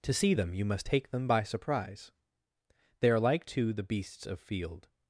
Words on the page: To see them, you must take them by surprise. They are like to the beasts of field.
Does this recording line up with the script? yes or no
yes